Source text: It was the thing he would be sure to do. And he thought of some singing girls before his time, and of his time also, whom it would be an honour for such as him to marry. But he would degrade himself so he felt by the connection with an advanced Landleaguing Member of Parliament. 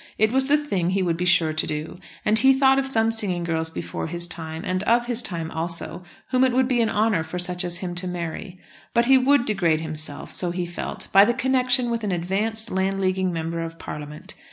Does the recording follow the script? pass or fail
pass